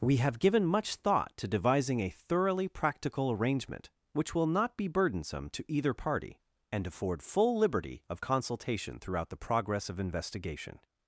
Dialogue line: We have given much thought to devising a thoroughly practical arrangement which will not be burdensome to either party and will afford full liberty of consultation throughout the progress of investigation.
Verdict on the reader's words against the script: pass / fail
fail